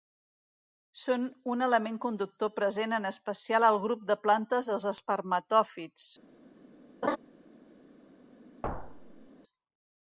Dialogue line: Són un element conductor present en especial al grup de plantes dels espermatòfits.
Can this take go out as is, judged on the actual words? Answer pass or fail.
pass